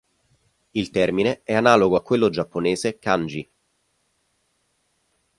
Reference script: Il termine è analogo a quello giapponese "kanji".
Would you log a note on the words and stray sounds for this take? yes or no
no